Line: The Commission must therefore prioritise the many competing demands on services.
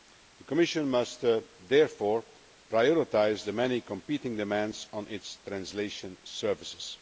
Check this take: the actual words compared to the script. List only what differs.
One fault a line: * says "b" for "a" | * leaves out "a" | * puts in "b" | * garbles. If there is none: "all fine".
* puts in "its translation"